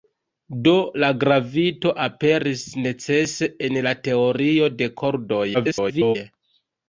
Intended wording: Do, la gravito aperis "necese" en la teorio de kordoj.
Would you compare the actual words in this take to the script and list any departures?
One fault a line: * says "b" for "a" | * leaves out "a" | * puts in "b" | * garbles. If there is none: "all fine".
* garbles